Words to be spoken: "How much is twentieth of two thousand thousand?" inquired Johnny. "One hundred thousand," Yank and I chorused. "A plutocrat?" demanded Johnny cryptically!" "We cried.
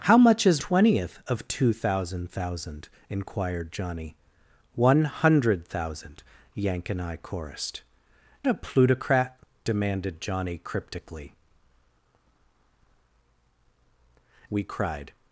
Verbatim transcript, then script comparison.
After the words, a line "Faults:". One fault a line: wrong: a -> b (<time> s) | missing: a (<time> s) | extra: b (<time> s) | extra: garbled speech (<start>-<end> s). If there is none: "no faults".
"How much is twentieth of two thousand thousand?" inquired Johnny. "One hundred thousand," Yank and I chorused. "A plutocrat?" demanded Johnny cryptically!" "We cried.
Faults:
no faults